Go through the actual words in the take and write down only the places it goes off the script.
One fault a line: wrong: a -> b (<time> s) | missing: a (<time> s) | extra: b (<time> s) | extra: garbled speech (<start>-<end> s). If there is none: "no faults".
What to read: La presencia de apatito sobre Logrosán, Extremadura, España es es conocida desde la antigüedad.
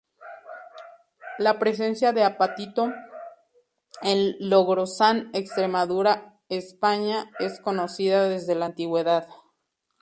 wrong: sobre -> en (4.0 s)
missing: es (7.6 s)